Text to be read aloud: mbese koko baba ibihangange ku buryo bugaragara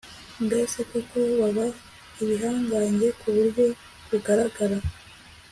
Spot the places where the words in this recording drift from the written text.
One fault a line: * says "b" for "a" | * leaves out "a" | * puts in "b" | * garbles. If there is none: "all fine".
all fine